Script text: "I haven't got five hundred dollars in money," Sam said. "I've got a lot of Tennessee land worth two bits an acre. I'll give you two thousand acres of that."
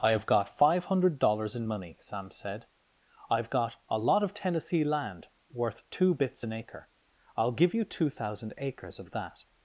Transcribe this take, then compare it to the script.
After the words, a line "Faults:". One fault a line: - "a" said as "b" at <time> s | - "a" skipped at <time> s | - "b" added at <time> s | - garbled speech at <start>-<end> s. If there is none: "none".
"I have got five hundred dollars in money," Sam said. "I've got a lot of Tennessee land worth two bits an acre. I'll give you two thousand acres of that."
Faults:
- "haven't" said as "have" at 0.1 s